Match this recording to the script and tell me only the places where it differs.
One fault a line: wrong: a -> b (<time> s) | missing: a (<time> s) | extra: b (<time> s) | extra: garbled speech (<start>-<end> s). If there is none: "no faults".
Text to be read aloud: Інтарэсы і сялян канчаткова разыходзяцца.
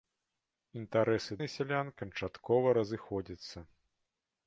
no faults